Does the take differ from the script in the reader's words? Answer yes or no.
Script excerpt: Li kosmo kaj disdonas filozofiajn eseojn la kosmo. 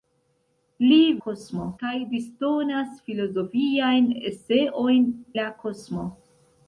no